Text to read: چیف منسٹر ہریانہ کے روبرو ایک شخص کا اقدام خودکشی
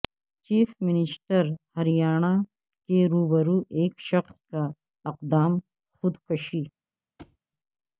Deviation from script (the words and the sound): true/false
true